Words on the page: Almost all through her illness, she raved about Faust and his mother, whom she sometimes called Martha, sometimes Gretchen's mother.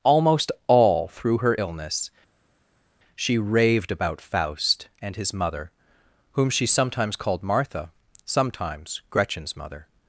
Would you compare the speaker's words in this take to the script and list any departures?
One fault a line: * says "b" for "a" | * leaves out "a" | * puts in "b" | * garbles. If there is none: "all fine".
all fine